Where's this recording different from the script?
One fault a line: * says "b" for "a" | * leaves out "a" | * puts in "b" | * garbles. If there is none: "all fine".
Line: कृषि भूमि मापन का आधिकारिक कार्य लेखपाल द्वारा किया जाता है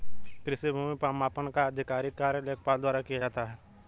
all fine